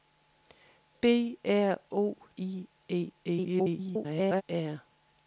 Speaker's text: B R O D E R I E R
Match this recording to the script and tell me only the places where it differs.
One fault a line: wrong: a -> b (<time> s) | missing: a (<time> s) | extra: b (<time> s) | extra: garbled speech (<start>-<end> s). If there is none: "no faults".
missing: D E R (2.2 s)
extra: garbled speech (3.2-4.4 s)